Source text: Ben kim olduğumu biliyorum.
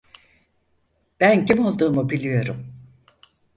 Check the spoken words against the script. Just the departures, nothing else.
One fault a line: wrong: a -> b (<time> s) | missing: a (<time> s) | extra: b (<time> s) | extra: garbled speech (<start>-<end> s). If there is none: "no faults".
no faults